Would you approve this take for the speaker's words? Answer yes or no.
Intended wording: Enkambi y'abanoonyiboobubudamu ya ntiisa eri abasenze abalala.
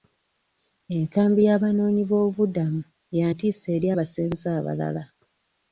yes